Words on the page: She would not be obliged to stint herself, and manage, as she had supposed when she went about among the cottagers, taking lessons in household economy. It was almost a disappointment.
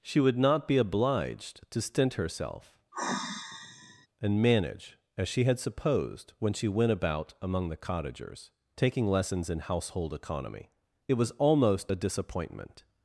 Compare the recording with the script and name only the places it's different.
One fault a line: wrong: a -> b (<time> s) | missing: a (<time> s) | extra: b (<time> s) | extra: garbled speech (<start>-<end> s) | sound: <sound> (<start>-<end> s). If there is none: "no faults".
sound: sigh (2.9-4.1 s)